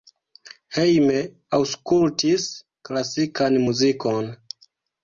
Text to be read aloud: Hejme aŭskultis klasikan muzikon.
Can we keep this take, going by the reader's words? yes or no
yes